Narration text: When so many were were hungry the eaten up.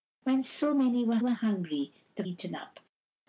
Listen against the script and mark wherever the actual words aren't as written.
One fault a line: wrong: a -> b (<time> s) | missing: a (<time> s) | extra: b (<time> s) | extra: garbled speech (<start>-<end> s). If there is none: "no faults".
no faults